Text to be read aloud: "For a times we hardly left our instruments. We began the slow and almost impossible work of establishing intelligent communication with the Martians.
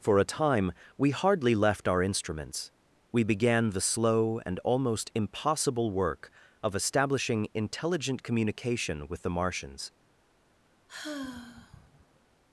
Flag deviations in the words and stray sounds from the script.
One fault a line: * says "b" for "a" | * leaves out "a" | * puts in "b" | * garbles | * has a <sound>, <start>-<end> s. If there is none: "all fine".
* says "time" for "times"
* has a sigh, 10.9-12.2 s